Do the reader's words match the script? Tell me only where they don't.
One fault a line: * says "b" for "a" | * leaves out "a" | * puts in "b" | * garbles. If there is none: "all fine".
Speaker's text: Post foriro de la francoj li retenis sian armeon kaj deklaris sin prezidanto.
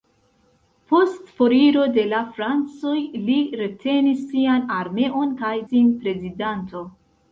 * leaves out "deklaris"